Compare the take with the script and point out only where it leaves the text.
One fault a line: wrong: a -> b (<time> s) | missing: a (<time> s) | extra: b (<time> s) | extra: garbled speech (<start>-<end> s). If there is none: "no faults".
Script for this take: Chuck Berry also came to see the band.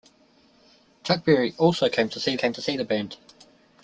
extra: came to see (2.3 s)